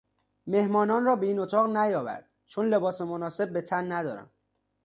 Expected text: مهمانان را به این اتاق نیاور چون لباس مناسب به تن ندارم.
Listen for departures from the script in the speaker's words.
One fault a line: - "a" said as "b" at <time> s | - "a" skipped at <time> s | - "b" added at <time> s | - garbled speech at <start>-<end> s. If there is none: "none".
none